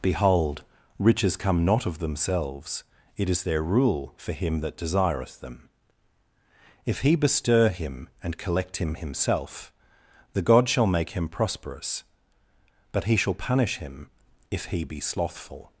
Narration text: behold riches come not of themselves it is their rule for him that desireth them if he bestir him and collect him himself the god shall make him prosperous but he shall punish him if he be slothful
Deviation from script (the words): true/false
false